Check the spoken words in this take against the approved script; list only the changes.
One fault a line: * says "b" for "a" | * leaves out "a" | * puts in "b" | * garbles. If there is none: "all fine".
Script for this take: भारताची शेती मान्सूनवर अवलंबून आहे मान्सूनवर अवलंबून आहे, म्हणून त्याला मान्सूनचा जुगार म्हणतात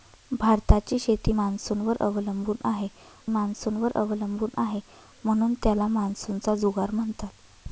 all fine